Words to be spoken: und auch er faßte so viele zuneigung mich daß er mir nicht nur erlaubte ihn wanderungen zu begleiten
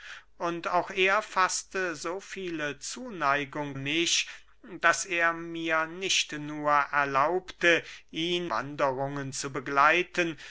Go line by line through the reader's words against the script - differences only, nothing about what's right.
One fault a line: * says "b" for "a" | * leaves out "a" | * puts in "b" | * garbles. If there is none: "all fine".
all fine